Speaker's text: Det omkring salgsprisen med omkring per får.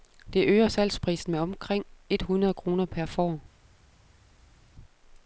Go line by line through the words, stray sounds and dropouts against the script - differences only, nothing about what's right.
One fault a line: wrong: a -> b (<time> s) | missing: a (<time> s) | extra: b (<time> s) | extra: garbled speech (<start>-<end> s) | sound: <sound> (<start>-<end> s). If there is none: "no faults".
wrong: omkring -> øger (0.5 s)
extra: et hundrede kroner (2.1 s)